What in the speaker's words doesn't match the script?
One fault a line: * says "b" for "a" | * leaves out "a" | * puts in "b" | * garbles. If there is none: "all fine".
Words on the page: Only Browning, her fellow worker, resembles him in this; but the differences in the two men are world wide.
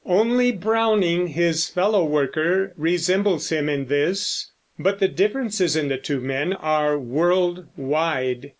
* says "his" for "her"